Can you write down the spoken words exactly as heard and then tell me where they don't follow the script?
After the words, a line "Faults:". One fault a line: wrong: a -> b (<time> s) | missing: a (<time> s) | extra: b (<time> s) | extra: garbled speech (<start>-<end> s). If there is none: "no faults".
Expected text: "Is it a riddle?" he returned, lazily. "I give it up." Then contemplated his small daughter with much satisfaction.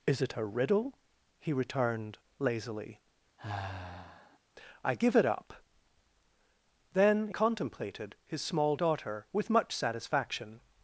"Is it a riddle?" he returned, lazily. "I give it up." Then contemplated his small daughter with much satisfaction.
Faults:
no faults